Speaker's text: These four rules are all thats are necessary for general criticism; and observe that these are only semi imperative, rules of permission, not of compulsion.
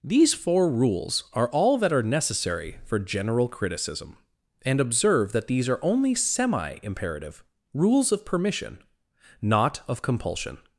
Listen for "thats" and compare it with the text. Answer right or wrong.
wrong